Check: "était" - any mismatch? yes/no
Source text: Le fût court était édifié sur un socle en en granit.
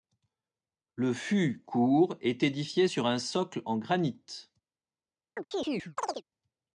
yes